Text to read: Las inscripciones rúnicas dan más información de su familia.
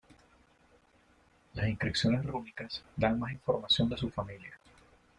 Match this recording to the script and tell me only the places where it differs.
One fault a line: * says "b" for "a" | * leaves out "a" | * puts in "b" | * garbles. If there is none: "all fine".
all fine